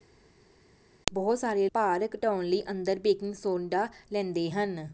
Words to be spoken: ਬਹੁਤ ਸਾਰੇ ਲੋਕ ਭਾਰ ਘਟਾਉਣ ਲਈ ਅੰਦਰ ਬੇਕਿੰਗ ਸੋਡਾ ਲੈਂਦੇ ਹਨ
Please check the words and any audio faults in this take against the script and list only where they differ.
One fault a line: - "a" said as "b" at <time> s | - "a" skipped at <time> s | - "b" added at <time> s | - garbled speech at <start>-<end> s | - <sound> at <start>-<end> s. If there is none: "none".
- "ਲੋਕ" skipped at 1.7 s